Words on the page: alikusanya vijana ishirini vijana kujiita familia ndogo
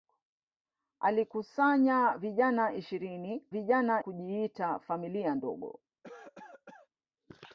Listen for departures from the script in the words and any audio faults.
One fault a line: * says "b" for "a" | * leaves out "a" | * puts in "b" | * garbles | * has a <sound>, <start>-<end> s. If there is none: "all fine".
* has a cough, 6.0-6.9 s